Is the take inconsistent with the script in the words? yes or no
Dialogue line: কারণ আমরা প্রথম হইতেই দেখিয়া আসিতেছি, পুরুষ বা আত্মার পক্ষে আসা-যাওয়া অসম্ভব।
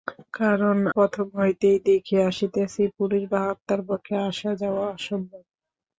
yes